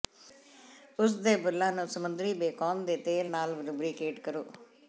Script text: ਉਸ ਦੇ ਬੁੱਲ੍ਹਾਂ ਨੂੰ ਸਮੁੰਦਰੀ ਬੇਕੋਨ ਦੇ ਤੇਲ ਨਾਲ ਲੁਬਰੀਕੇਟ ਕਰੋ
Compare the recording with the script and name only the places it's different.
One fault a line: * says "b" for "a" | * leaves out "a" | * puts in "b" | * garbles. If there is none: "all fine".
all fine